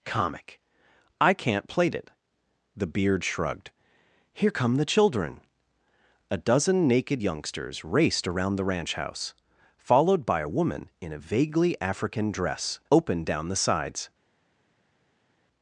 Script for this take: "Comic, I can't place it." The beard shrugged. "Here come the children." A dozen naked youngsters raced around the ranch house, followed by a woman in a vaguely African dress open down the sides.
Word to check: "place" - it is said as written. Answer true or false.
false